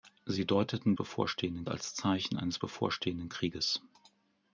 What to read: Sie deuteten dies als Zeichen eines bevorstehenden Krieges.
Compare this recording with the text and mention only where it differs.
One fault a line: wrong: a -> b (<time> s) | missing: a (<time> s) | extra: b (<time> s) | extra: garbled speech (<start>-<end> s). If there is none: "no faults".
wrong: dies -> bevorstehenden (0.9 s)